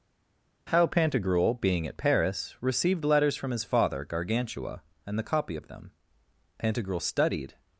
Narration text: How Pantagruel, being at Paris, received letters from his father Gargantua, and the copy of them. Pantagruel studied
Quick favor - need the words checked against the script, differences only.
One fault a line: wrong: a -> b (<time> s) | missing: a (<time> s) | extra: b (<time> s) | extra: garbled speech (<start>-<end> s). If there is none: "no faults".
no faults